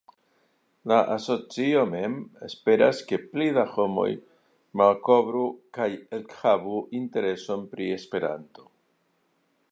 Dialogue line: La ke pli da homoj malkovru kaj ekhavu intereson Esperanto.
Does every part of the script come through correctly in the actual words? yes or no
no